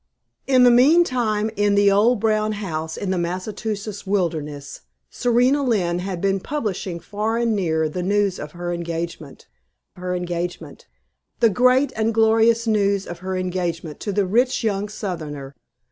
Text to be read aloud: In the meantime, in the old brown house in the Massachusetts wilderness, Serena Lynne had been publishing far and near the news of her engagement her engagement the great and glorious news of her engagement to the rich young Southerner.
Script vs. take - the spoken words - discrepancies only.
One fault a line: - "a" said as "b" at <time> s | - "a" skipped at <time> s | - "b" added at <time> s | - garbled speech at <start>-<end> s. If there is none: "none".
none